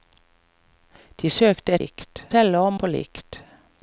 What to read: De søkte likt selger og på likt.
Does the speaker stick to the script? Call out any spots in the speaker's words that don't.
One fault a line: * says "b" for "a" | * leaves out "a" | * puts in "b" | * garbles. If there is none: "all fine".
all fine